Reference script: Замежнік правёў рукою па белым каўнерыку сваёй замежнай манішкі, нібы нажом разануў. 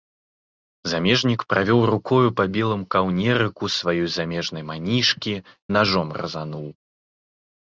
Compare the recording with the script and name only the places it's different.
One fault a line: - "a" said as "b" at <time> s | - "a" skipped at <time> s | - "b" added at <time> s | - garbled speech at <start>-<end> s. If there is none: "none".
- "нібы" skipped at 5.3 s